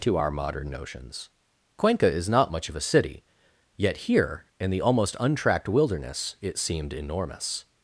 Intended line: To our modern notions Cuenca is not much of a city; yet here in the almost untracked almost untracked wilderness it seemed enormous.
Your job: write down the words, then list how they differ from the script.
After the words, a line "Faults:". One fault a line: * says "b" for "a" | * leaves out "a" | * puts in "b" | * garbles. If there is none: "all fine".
To our modern notions Cuenca is not much of a city; yet here in the almost untracked wilderness it seemed enormous.
Faults:
* leaves out "almost untracked"